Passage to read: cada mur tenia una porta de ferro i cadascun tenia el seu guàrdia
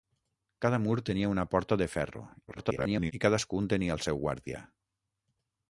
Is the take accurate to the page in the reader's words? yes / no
no